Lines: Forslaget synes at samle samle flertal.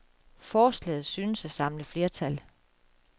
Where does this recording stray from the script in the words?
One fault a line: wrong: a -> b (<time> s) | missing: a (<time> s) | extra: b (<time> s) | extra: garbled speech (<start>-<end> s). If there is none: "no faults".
missing: samle (1.8 s)